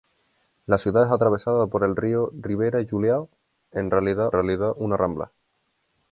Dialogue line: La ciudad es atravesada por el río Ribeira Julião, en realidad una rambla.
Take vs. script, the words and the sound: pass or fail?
fail